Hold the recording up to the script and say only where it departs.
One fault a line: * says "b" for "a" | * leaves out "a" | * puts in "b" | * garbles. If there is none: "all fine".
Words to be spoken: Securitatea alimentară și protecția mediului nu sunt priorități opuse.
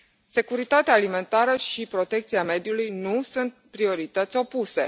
all fine